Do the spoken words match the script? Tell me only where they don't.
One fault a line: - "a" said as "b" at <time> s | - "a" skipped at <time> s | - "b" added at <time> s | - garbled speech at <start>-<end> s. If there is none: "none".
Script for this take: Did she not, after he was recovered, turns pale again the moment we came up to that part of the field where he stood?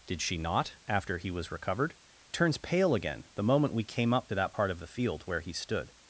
none